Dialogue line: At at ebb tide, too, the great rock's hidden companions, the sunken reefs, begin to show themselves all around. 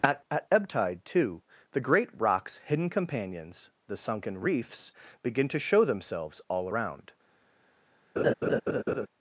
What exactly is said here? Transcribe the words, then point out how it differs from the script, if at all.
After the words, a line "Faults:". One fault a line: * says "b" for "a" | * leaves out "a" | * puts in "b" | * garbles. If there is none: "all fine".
At at ebb tide, too, the great rock's hidden companions, the sunken reefs, begin to show themselves all around.
Faults:
all fine